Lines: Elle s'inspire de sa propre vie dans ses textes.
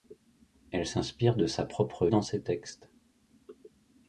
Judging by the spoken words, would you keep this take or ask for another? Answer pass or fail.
fail